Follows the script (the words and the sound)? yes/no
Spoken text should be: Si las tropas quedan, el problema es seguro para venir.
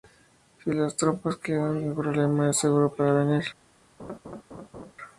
no